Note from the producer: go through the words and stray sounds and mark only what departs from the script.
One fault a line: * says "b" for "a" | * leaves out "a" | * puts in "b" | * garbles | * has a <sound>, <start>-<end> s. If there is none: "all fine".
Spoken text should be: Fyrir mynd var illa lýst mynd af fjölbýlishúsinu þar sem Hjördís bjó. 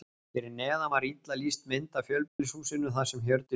* says "neðan" for "mynd"
* has a dropout, 2.3-2.4 s